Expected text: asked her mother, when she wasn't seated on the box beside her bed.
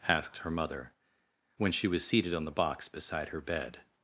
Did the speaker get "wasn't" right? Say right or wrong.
wrong